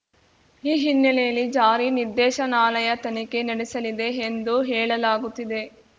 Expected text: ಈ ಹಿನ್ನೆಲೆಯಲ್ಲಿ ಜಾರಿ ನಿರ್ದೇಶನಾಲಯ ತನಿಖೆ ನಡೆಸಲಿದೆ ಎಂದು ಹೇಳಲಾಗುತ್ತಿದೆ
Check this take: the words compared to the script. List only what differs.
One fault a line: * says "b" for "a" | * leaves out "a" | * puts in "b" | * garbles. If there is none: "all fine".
all fine